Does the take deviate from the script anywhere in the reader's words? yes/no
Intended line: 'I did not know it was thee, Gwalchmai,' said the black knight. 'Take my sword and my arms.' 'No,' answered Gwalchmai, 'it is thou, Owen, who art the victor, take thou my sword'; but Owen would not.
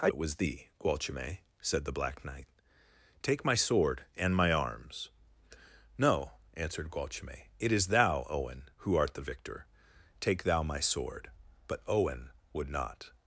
yes